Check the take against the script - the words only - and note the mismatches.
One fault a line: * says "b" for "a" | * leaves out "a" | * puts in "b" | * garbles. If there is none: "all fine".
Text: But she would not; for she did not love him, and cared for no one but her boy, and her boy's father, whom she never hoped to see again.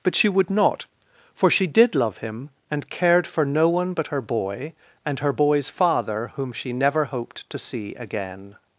* leaves out "not"